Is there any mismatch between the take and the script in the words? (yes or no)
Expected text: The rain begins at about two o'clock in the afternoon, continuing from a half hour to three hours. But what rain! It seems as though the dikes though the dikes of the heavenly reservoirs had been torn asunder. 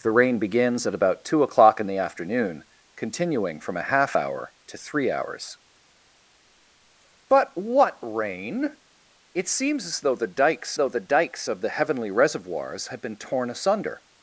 no